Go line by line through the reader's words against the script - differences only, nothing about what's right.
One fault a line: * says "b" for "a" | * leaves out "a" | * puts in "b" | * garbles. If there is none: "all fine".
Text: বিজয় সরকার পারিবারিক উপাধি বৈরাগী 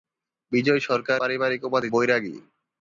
all fine